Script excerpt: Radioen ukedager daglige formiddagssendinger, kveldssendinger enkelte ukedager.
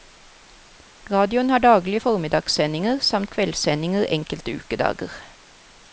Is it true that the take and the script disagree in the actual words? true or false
true